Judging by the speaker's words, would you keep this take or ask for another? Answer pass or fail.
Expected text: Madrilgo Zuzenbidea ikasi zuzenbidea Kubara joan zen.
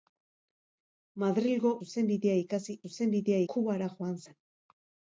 pass